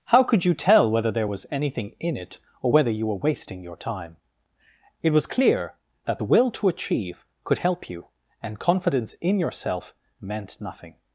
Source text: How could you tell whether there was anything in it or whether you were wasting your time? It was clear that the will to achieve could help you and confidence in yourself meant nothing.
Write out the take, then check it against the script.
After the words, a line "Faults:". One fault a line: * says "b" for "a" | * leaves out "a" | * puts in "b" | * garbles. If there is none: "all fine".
How could you tell whether there was anything in it or whether you were wasting your time? It was clear that the will to achieve could help you and confidence in yourself meant nothing.
Faults:
all fine